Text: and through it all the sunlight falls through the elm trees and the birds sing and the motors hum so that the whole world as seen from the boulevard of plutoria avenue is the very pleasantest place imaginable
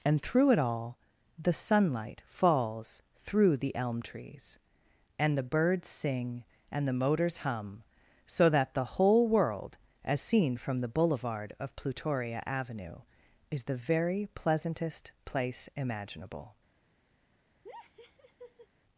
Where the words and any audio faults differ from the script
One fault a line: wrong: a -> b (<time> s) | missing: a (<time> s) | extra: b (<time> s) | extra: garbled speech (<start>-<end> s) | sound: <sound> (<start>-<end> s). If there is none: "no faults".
sound: laugh (17.6-18.7 s)